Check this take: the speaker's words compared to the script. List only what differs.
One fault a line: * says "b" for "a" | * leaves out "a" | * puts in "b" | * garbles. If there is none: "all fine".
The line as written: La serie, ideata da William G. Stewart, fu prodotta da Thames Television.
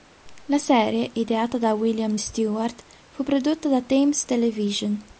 * leaves out "G"